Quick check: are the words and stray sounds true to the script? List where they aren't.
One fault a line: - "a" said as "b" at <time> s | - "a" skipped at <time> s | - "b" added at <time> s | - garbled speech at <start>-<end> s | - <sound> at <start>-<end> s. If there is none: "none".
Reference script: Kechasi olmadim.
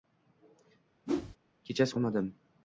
- whoosh at 1.1-1.4 s